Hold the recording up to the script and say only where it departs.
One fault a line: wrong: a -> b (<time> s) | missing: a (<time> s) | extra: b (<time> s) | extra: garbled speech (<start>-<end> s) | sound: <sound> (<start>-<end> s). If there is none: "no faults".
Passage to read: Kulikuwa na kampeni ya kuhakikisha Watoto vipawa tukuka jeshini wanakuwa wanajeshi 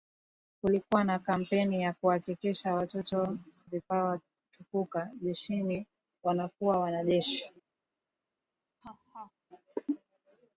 sound: laugh (8.8-9.3 s)